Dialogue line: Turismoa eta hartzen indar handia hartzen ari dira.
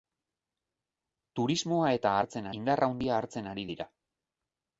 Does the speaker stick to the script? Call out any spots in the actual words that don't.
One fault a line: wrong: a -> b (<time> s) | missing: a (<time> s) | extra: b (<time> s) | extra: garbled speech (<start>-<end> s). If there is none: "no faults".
no faults